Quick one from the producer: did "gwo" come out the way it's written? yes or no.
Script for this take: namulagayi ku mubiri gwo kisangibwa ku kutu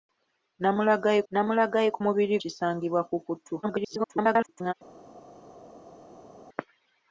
no